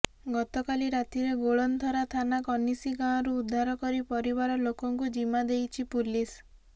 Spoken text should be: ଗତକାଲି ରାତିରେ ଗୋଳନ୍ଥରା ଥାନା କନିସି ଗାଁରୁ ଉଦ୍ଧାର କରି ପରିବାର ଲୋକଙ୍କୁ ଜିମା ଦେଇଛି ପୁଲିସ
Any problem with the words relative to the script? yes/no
no